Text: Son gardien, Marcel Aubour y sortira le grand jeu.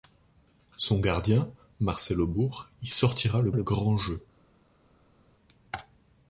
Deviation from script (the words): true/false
true